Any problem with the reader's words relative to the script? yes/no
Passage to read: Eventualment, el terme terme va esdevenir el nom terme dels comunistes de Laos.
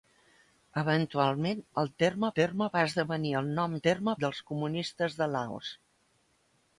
no